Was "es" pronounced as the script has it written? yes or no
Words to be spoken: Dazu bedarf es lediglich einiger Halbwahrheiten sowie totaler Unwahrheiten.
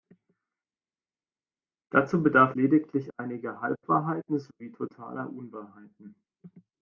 no